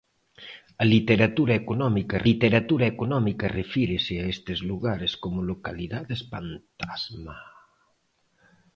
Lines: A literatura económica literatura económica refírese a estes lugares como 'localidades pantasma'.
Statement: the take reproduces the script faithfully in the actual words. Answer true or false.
true